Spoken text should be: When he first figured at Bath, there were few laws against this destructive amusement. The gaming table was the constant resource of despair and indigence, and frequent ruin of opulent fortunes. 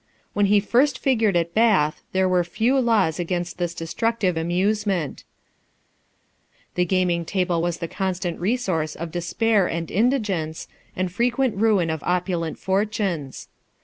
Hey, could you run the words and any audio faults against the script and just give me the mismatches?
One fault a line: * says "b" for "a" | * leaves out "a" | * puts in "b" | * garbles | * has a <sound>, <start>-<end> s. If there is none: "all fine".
all fine